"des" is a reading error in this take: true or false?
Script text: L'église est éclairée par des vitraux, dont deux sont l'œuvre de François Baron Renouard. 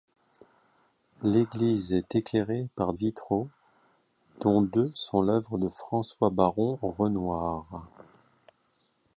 true